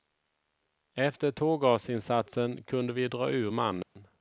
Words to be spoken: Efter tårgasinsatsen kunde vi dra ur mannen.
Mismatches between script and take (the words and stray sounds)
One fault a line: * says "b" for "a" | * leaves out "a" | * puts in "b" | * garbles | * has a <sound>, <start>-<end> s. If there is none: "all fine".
* has a dropout, 3.8-4.0 s